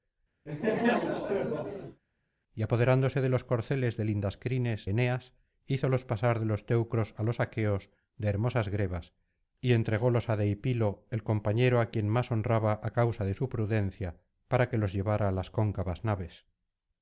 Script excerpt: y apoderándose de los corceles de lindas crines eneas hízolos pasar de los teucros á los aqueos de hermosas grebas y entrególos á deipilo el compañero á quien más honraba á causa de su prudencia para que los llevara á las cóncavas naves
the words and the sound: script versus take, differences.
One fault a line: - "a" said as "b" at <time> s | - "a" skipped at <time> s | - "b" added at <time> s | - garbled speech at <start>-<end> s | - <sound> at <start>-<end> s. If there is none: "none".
- laugh at 0.5-2.0 s